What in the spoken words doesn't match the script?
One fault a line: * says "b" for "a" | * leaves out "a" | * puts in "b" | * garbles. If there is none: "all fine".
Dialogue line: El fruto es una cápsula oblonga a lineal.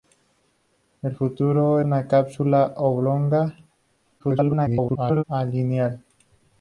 * leaves out "es"
* garbles